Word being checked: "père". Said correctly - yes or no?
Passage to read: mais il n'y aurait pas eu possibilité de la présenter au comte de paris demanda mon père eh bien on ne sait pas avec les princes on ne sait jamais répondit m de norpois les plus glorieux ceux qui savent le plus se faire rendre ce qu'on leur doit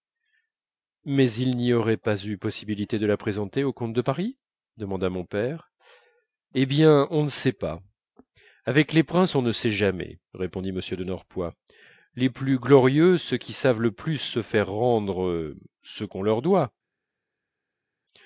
yes